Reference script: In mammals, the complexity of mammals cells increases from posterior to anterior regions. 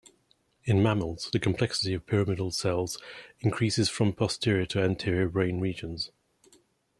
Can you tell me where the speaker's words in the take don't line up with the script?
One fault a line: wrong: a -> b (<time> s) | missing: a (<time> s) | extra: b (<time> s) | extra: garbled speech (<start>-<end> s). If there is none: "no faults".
wrong: mammals -> pyramidal (2.1 s)
extra: brain (5.3 s)